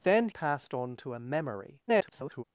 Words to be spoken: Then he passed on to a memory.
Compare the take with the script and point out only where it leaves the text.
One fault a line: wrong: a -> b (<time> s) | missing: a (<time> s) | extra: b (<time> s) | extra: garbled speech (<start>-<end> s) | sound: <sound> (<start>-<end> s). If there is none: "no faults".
missing: he (0.3 s)
extra: garbled speech (1.9-2.4 s)